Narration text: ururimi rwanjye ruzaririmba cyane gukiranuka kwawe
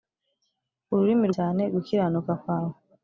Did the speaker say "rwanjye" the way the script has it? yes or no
no